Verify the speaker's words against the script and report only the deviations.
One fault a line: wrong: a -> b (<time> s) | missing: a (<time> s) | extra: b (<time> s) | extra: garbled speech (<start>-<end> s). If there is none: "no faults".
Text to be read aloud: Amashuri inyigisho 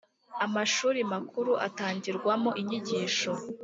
extra: makuru atangirwamo (1.1 s)